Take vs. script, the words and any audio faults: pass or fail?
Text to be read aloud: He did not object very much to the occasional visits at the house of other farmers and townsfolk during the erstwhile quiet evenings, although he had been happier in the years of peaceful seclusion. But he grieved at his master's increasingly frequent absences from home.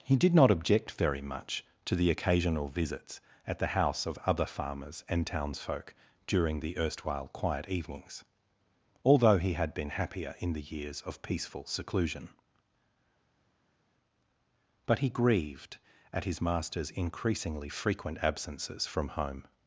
pass